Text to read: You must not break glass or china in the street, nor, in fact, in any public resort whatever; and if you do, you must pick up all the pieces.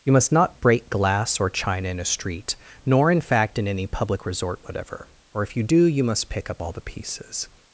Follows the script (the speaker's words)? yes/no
no